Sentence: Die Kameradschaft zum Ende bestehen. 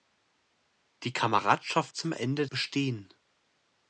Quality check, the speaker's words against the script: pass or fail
pass